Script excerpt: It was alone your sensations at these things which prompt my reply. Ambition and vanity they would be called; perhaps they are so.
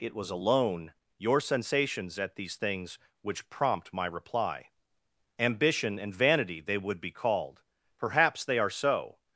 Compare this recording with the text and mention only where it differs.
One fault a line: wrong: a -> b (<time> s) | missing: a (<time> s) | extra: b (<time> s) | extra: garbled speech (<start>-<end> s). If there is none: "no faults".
no faults